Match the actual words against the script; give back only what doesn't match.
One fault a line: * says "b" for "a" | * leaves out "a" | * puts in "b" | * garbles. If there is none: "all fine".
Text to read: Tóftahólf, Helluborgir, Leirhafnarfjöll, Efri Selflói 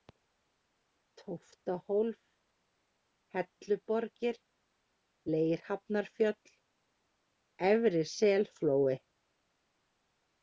all fine